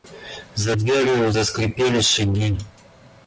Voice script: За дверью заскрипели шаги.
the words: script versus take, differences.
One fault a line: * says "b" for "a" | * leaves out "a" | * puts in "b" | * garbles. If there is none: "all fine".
all fine